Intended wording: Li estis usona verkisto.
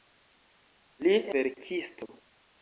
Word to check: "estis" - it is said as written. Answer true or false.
false